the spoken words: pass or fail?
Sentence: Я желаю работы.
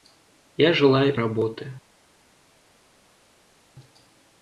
pass